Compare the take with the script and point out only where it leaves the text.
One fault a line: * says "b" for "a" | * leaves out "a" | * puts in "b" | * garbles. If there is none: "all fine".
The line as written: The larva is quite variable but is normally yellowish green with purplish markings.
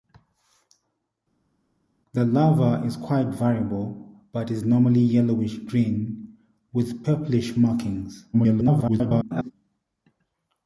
* garbles